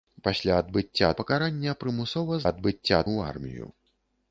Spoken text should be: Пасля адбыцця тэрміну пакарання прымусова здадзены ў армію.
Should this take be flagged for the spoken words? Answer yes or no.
yes